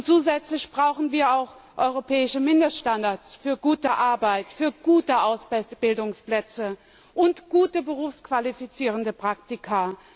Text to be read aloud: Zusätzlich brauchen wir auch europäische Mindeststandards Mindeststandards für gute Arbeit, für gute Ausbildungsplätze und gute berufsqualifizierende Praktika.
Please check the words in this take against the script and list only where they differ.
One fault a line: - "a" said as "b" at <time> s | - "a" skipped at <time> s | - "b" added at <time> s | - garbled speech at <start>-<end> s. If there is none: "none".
- "Mindeststandards" skipped at 3.4 s